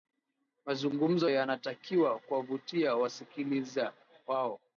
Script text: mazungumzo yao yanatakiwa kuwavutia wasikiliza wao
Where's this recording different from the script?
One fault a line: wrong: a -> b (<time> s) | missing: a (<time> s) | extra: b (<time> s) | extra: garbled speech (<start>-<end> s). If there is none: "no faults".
missing: yao (1.3 s)